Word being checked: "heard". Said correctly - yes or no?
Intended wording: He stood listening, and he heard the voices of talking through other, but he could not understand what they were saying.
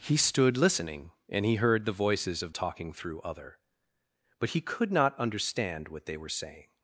yes